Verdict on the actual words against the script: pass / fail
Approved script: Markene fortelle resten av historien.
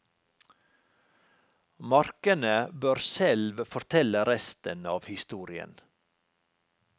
fail